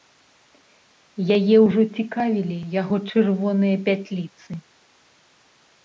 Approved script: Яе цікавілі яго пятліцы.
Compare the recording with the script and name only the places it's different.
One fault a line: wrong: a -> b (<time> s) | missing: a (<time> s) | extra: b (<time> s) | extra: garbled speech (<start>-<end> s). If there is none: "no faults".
extra: ўжо (1.7 s)
extra: чырвоныя (3.1 s)